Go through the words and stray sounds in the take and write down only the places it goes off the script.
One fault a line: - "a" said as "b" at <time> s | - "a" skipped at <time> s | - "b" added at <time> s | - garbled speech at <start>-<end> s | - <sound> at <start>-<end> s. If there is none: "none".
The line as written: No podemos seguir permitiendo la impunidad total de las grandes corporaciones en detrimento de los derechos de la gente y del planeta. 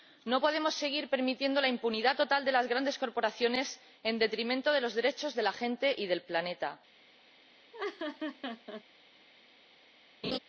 - laugh at 7.7-8.8 s
- laugh at 10.2-10.4 s